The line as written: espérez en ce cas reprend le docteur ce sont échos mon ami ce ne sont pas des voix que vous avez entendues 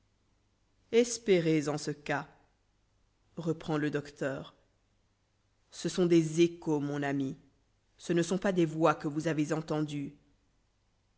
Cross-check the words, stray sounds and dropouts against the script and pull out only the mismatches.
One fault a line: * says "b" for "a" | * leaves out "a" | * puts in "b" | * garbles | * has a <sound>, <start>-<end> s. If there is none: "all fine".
* puts in "des"